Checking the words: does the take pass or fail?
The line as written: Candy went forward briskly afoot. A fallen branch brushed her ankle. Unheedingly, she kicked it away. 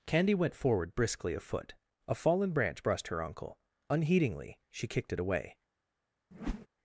fail